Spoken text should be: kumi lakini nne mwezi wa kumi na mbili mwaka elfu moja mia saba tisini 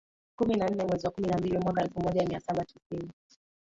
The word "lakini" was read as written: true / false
false